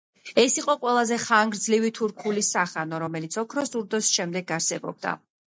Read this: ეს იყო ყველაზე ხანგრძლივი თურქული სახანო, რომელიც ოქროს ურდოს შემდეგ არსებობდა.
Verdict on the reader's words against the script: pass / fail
pass